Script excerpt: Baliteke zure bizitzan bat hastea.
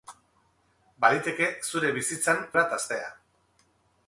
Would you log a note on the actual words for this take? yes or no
no